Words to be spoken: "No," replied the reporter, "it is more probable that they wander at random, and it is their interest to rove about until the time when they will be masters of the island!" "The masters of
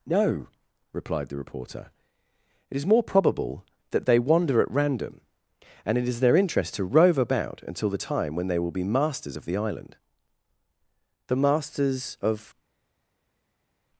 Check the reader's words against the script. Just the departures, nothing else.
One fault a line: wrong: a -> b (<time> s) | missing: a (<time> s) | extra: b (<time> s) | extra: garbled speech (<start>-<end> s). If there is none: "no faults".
no faults